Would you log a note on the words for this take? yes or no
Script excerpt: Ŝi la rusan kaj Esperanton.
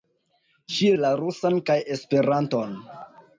no